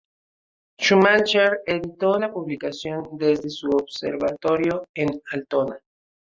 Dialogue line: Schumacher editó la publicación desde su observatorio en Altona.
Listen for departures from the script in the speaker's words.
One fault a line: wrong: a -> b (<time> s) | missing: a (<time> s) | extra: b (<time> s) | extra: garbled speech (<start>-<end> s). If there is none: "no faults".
no faults